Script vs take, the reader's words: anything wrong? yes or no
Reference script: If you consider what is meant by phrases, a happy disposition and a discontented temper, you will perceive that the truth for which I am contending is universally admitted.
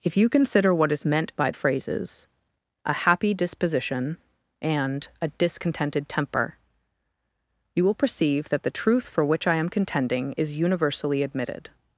no